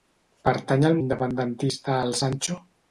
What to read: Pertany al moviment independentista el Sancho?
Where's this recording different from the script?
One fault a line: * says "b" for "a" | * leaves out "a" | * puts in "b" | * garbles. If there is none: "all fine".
* leaves out "moviment"